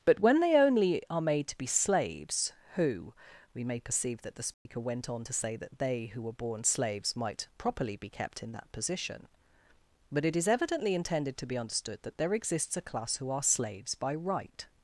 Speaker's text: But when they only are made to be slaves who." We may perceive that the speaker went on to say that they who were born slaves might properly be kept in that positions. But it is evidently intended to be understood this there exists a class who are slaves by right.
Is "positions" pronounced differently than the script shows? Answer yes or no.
yes